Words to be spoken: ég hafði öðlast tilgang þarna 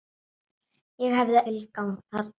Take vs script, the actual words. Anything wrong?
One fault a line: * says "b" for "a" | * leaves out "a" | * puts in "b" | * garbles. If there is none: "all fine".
* leaves out "öðlast"